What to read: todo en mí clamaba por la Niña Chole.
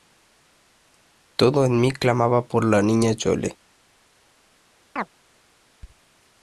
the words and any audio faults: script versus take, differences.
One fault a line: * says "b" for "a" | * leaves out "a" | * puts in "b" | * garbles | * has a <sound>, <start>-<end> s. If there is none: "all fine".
* has a chirp, 5.0-5.1 s